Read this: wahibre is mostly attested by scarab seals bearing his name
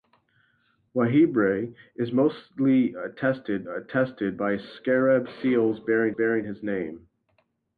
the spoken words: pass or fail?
fail